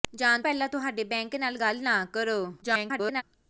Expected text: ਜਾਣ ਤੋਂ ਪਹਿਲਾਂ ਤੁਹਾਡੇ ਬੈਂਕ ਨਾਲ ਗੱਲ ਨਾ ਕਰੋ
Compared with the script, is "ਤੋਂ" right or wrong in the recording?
wrong